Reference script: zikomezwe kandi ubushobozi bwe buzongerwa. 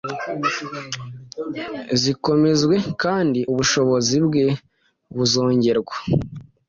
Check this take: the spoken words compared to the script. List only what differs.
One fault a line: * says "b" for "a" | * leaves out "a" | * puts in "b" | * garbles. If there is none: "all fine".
all fine